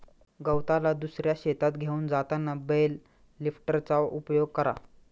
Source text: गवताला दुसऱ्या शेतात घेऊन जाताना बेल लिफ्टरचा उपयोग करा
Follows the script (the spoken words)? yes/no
yes